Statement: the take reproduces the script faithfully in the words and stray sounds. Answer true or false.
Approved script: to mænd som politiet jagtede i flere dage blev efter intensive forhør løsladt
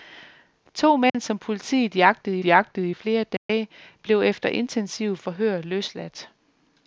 false